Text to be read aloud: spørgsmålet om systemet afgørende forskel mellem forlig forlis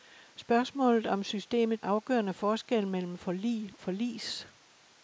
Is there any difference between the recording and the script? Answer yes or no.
no